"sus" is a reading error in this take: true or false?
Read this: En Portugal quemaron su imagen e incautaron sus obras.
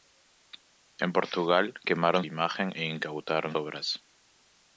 true